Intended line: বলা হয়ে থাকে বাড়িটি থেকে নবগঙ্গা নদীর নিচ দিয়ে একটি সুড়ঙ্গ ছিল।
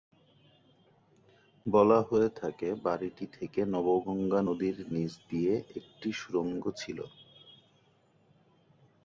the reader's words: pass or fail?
pass